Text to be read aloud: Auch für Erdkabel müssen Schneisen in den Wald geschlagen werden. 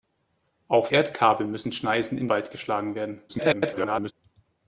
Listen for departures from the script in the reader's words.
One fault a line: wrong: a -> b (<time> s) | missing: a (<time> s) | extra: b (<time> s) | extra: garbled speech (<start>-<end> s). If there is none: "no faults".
missing: für (0.9 s)
missing: den (2.3 s)
extra: garbled speech (3.3-4.1 s)